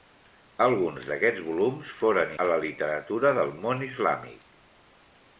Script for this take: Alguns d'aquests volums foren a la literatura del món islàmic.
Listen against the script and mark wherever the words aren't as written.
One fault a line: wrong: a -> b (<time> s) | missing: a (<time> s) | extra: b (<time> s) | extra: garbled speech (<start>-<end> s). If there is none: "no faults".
no faults